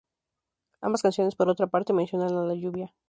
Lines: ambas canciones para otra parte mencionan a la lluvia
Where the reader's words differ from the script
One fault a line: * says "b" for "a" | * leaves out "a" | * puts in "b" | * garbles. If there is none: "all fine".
* says "por" for "para"